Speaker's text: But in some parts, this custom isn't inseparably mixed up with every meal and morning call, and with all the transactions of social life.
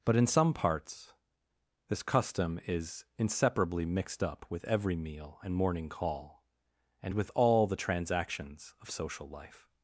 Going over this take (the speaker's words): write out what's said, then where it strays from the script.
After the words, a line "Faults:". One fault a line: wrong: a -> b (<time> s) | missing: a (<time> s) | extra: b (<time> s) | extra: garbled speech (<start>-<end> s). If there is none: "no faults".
But in some parts, this custom is inseparably mixed up with every meal and morning call, and with all the transactions of social life.
Faults:
wrong: isn't -> is (2.6 s)